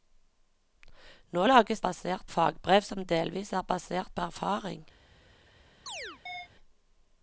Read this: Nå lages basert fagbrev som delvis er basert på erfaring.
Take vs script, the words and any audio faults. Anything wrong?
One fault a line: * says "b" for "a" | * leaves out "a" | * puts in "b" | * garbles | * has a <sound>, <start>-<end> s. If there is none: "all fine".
* has a chirp, 5.9-6.5 s